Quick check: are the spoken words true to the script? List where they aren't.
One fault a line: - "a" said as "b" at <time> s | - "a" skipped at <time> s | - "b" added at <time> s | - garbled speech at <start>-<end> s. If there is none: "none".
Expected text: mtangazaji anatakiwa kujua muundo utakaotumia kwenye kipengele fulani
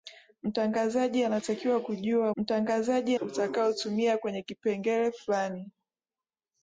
- "muundo" said as "mtangazaji" at 2.4 s